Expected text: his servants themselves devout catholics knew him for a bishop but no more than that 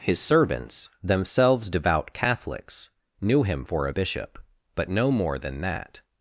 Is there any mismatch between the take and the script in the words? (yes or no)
no